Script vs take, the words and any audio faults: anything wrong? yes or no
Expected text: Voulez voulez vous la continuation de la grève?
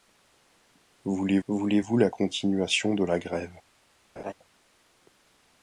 yes